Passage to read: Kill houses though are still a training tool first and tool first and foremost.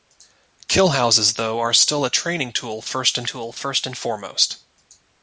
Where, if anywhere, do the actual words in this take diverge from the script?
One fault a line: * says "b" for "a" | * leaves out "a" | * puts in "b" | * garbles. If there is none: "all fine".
all fine